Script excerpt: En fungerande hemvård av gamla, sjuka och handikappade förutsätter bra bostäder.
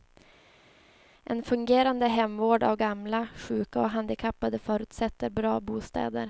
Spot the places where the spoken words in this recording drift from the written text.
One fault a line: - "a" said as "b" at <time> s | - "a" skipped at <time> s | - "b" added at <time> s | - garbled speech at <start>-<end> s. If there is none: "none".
none